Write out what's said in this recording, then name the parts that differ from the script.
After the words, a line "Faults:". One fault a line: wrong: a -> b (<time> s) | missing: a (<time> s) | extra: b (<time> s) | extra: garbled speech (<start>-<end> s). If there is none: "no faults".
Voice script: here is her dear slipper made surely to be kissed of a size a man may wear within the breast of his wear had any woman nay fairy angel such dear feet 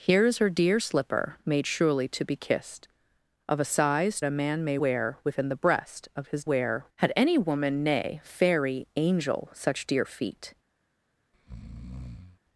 here is her dear slipper made surely to be kissed of a size a man may wear within the breast of his wear had any woman nay fairy angel such dear feet
Faults:
no faults